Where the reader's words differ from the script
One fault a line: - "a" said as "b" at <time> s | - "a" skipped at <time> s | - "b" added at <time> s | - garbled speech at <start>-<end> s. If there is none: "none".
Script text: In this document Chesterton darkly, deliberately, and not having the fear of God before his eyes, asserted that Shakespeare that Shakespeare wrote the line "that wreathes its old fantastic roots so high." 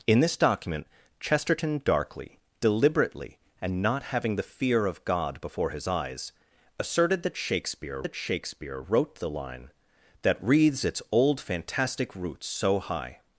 none